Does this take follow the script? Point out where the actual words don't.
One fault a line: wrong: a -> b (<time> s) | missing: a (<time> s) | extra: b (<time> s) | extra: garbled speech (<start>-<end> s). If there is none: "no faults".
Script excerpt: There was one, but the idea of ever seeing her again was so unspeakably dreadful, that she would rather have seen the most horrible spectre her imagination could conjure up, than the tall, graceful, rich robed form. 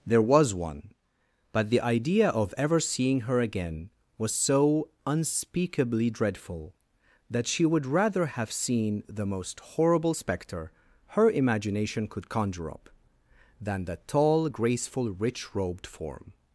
no faults